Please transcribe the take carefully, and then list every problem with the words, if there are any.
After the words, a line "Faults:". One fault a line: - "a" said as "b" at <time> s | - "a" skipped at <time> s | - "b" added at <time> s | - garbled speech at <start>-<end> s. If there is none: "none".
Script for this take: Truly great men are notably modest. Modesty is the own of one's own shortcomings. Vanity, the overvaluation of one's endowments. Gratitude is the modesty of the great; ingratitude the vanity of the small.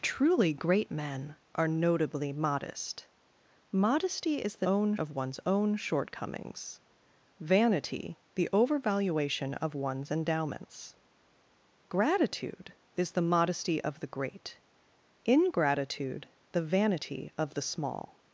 Truly great men are notably modest. Modesty is the own of one's own shortcomings. Vanity, the overvaluation of one's endowments. Gratitude is the modesty of the great; ingratitude the vanity of the small.
Faults:
none